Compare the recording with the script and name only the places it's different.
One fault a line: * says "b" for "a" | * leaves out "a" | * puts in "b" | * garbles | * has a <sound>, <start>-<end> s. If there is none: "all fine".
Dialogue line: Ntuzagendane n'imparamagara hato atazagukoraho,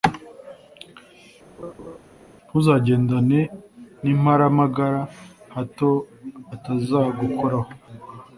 * has a laugh, 1.6-2.0 s